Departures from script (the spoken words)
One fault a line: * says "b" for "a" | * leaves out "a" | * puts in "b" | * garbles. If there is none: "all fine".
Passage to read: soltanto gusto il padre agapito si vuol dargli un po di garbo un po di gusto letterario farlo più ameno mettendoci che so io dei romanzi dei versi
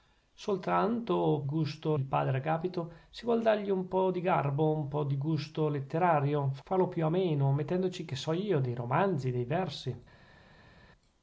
all fine